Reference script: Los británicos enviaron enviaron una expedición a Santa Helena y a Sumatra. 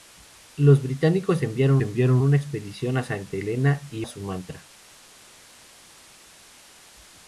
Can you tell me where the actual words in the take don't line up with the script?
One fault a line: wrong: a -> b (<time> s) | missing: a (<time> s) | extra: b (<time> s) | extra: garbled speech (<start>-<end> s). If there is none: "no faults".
no faults